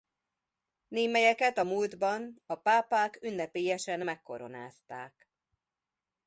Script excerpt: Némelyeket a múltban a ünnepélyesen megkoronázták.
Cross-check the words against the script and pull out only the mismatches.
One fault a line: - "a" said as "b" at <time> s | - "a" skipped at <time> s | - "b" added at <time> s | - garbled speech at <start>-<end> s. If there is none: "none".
- "pápák" added at 2.6 s